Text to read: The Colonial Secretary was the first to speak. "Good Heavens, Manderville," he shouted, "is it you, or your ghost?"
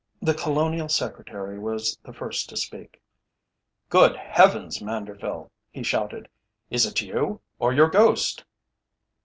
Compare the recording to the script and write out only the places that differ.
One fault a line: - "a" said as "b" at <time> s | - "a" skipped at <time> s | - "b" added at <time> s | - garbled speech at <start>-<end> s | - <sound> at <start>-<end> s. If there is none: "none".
none